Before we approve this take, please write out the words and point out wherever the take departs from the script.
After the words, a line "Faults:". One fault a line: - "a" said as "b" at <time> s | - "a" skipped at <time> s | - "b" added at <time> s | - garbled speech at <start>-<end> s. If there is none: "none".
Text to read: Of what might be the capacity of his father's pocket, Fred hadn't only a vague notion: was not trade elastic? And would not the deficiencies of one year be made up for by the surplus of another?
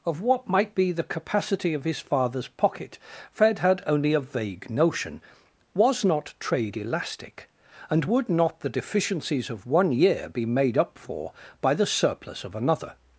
Of what might be the capacity of his father's pocket, Fred had only a vague notion: was not trade elastic? And would not the deficiencies of one year be made up for by the surplus of another?
Faults:
- "hadn't" said as "had" at 3.6 s